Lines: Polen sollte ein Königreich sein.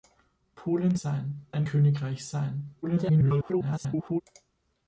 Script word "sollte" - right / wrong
wrong